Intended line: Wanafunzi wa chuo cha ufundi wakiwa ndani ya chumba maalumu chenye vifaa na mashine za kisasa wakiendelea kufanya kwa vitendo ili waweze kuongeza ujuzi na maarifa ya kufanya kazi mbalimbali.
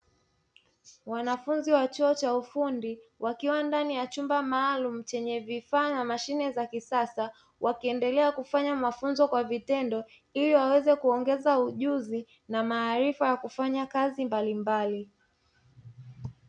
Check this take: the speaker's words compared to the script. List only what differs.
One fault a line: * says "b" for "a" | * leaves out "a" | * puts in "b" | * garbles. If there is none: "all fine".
* puts in "mafunzo"